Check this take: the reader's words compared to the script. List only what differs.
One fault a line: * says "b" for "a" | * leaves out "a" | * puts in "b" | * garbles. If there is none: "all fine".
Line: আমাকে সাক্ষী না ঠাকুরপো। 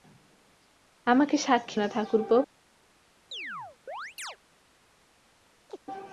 all fine